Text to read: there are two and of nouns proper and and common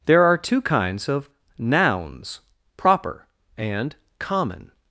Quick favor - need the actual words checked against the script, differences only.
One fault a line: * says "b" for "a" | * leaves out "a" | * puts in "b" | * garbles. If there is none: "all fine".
* says "kinds" for "and"
* leaves out "and"